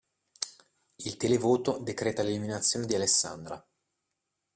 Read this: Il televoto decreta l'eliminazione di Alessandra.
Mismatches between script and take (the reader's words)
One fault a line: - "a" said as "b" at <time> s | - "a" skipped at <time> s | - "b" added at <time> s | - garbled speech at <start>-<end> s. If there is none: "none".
none